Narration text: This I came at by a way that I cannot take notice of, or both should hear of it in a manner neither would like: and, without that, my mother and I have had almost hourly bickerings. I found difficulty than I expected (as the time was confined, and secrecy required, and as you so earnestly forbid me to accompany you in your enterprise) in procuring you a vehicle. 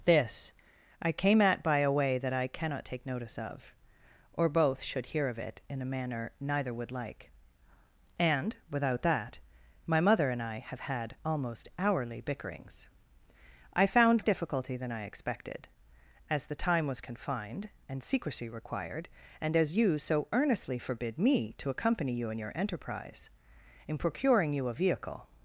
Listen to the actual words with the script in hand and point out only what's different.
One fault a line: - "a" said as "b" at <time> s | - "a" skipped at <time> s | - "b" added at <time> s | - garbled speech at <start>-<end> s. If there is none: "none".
none